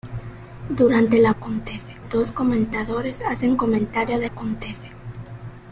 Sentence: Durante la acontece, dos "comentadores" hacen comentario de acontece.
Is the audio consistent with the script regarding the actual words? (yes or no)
yes